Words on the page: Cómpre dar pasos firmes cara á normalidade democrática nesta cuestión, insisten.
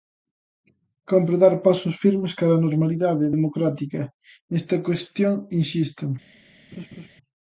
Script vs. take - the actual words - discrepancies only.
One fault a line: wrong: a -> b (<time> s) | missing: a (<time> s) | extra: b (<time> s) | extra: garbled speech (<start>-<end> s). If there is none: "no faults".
no faults